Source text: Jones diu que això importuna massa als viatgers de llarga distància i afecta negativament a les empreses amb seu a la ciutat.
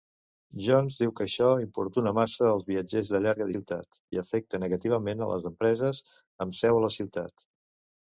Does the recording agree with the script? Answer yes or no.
no